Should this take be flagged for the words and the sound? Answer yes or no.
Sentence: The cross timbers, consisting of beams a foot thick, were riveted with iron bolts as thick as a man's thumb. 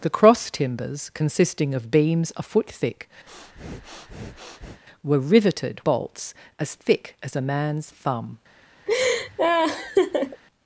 yes